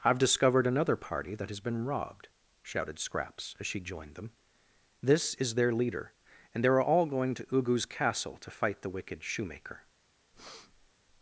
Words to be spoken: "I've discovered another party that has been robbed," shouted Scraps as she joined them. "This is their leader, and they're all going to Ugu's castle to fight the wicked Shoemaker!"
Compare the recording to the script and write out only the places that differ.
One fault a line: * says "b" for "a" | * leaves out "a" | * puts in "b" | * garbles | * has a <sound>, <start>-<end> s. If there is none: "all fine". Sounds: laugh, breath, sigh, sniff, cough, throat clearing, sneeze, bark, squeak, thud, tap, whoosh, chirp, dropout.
* has a breath, 10.3-10.9 s